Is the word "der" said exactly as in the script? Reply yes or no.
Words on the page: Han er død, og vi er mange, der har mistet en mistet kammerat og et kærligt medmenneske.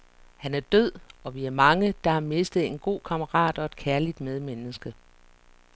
yes